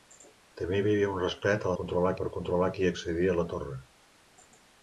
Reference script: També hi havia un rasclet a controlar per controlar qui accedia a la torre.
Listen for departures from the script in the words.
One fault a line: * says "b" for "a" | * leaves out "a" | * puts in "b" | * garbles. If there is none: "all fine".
all fine